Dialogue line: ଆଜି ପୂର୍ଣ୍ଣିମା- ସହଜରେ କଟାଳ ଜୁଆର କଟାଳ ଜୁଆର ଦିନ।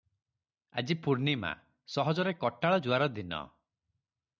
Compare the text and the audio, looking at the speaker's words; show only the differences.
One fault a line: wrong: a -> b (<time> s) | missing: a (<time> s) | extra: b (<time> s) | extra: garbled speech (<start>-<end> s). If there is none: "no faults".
missing: କଟାଳ ଜୁଆର (3.1 s)